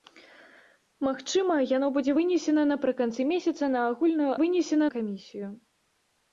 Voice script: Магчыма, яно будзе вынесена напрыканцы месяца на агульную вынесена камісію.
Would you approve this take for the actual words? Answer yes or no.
yes